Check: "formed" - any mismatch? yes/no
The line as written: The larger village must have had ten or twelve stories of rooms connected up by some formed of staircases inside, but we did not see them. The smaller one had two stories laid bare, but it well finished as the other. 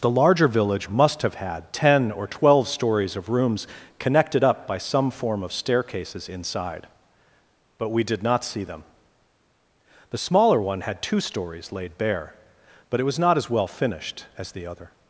yes